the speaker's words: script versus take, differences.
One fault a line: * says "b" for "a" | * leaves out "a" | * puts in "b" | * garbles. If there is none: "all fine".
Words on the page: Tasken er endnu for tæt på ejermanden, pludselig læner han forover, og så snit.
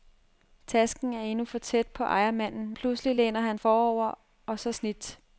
all fine